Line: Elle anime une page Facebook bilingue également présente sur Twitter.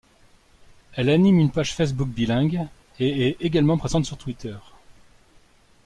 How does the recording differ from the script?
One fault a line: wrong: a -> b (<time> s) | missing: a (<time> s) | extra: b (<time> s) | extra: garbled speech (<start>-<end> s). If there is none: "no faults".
extra: et est (3.0 s)